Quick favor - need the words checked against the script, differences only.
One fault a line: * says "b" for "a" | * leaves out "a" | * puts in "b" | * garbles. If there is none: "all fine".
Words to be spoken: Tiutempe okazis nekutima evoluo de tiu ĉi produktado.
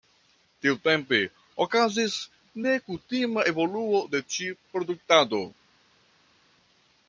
* leaves out "tiu"